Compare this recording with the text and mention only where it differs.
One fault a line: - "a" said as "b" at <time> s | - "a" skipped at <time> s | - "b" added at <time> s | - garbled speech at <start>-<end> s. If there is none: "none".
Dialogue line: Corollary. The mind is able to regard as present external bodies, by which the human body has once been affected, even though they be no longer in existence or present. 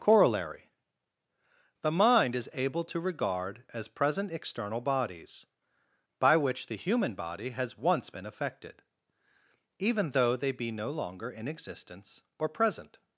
none